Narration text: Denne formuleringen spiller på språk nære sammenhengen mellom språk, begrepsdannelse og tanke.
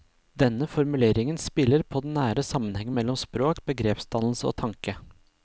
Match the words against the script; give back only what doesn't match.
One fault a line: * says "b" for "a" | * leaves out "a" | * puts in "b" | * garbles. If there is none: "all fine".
* says "den" for "språk"